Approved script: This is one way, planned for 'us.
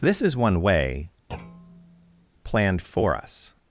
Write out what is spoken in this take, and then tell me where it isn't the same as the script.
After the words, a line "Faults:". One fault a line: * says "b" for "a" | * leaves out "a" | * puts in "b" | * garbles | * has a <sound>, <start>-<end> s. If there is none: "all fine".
This is one way, planned for 'us.
Faults:
* has a thud, 1.3-2.3 s